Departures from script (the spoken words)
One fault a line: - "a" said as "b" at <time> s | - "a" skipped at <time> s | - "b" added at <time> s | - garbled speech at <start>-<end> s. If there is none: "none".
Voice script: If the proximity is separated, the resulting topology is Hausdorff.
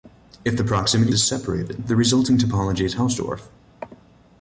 none